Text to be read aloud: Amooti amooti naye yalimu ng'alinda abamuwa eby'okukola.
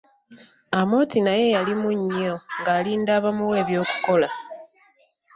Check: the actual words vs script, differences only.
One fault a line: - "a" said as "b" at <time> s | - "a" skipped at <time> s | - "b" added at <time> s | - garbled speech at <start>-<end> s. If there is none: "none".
- "amooti" skipped at 1.2 s
- "nnyo" added at 2.0 s